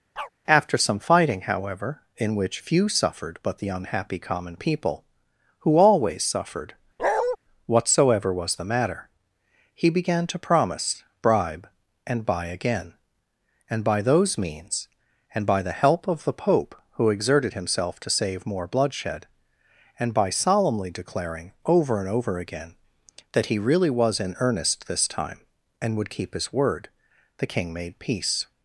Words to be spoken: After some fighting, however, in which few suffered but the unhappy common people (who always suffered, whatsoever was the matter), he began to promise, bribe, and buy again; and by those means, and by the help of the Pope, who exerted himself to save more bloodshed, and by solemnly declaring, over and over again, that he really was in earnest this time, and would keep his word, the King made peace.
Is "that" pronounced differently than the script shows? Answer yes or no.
no